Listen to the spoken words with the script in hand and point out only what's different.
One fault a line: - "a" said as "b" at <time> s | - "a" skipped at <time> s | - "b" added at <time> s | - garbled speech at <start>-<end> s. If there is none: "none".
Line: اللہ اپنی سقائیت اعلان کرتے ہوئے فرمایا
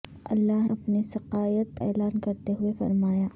none